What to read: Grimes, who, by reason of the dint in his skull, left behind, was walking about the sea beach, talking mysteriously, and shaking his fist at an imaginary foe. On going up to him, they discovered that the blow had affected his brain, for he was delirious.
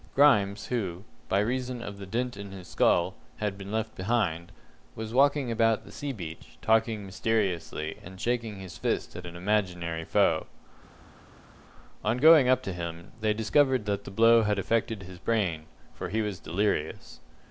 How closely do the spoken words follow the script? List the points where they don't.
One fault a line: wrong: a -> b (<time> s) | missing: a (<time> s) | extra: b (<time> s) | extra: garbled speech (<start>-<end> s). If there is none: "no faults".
extra: had been (3.4 s)